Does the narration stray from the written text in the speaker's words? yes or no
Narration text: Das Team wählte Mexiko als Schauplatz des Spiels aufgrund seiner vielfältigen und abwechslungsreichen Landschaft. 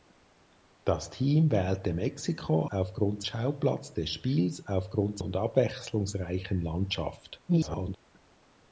yes